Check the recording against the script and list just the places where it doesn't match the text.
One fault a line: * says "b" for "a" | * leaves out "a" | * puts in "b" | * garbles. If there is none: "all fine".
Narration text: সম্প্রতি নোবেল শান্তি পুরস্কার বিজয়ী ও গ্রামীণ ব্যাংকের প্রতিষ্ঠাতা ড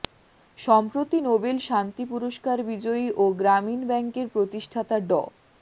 all fine